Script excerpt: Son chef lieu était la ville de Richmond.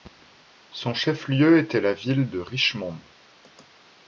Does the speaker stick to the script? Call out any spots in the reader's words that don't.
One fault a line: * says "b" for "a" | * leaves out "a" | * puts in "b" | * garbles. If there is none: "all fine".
all fine